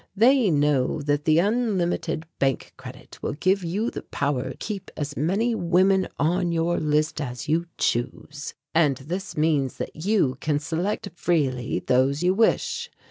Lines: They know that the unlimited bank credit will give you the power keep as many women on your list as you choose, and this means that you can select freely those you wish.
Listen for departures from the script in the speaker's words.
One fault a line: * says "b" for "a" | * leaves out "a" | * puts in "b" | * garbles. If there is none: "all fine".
all fine